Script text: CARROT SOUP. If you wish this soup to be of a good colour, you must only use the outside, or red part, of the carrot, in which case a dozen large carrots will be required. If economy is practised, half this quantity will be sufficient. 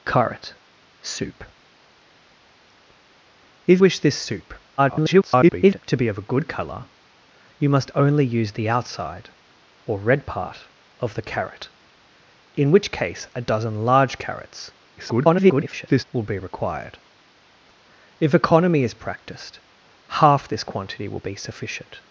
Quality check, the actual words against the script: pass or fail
fail